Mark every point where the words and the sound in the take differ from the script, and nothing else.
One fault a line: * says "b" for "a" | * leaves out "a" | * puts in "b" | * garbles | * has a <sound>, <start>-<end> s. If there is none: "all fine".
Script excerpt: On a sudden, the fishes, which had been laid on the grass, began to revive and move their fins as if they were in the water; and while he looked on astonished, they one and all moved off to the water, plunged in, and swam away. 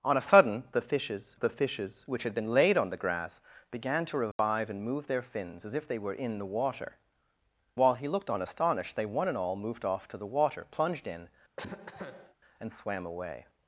* puts in "the fishes"
* has a dropout, 4.3-4.4 s
* leaves out "and"
* has a cough, 11.6-12.4 s